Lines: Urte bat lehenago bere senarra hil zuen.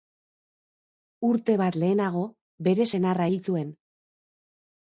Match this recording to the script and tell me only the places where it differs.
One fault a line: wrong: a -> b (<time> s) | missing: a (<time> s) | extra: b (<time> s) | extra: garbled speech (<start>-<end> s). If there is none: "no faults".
no faults